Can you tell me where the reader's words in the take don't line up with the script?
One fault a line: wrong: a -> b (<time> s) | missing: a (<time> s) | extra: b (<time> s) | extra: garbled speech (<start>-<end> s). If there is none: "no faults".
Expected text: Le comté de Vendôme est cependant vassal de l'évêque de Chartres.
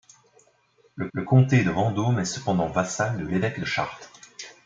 extra: le (1.1 s)